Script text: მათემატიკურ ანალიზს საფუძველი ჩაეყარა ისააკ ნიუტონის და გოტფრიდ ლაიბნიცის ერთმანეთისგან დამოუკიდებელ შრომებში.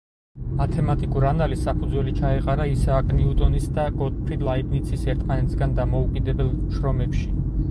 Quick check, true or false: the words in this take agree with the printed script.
true